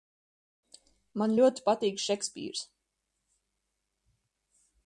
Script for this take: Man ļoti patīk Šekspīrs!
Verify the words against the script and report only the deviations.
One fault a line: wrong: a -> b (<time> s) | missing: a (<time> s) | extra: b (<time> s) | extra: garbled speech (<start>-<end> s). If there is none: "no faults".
no faults